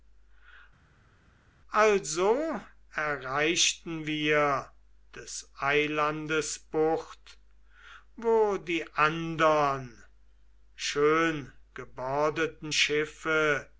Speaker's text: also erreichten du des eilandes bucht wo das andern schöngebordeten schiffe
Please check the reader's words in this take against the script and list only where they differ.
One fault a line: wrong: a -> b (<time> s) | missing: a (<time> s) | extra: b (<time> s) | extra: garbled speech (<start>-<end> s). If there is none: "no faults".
wrong: du -> wir (4.1 s)
wrong: das -> die (8.6 s)